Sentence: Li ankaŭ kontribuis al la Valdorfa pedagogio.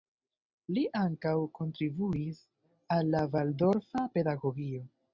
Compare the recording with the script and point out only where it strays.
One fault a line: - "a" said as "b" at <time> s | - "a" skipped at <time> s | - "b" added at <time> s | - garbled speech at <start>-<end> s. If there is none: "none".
none